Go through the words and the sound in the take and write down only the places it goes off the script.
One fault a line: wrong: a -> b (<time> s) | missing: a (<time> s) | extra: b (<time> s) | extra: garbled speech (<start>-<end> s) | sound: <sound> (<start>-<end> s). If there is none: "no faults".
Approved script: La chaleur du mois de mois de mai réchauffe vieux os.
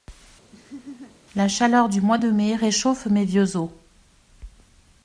sound: laugh (0.5-1.2 s)
missing: mois de (2.3 s)
extra: mes (3.1 s)